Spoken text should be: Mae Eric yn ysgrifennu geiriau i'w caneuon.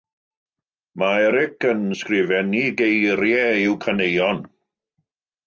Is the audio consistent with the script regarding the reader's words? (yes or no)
yes